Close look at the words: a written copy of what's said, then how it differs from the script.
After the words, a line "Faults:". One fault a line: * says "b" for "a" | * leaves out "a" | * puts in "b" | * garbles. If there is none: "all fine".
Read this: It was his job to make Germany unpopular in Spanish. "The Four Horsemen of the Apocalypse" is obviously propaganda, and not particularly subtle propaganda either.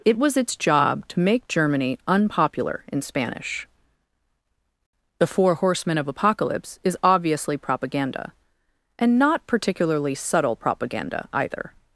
It was its job to make Germany unpopular in Spanish. "The Four Horsemen of Apocalypse" is obviously propaganda, and not particularly subtle propaganda either.
Faults:
* says "its" for "his"
* leaves out "the"